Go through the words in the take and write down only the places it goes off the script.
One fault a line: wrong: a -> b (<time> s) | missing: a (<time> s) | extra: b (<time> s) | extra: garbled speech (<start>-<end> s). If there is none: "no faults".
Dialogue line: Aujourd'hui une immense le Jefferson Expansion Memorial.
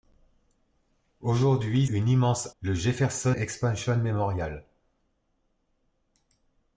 no faults